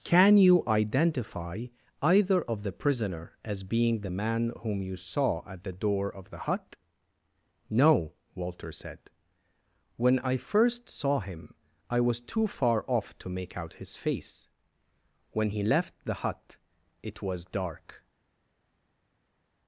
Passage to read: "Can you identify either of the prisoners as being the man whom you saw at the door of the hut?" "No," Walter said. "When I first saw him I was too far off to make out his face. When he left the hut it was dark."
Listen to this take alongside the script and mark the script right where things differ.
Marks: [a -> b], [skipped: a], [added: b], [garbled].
"Can you identify either of the [prisoners -> prisoner] as being the man whom you saw at the door of the hut?" "No," Walter said. "When I first saw him I was too far off to make out his face. When he left the hut it was dark."